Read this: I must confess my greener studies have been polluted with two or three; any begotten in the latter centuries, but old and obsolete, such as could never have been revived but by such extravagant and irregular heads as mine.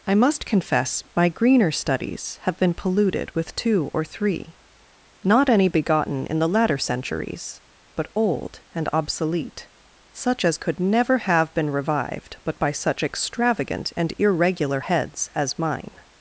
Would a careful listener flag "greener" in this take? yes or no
no